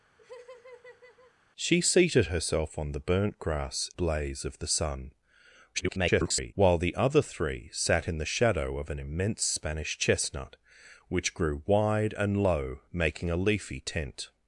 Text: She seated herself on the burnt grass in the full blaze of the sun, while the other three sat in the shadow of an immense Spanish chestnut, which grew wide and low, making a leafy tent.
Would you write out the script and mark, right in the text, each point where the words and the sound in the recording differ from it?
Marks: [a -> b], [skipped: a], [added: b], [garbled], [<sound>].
[laugh] She seated herself on the burnt grass [skipped: in the full] blaze of the sun, [garbled] while the other three sat in the shadow of an immense Spanish chestnut, which grew wide and low, making a leafy tent.